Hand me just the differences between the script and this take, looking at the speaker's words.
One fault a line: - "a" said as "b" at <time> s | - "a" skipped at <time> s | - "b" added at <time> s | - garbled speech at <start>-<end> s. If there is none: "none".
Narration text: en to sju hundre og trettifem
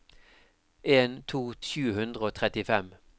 none